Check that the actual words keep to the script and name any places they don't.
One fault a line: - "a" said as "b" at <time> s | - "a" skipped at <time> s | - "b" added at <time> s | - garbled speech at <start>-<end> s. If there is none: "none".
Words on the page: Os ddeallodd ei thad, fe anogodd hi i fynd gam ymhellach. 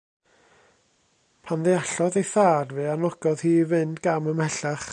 - "Os" said as "Pan" at 1.4 s